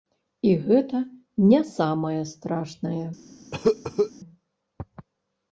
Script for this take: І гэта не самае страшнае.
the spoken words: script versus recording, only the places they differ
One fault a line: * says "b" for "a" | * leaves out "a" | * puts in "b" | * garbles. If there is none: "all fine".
all fine